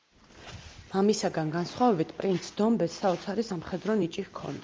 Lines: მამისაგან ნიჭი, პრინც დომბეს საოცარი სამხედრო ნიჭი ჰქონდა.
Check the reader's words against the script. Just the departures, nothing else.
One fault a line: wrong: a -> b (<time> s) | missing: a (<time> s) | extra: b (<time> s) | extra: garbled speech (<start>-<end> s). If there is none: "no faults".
wrong: ნიჭი -> განსხვავებით (1.6 s)